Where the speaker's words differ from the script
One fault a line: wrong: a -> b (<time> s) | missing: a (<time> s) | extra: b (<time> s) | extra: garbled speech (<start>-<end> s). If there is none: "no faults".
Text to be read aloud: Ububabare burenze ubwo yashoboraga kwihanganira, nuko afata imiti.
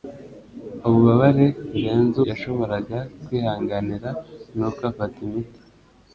missing: ubwo (2.2 s)